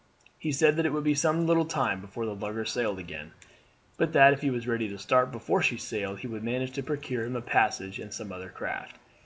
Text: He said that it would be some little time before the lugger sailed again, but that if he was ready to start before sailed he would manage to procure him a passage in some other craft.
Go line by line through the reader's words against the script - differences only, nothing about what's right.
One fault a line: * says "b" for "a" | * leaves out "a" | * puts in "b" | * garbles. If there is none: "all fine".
* puts in "she"